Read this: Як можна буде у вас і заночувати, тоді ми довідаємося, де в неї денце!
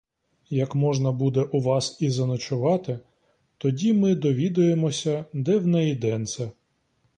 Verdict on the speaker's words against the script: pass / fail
pass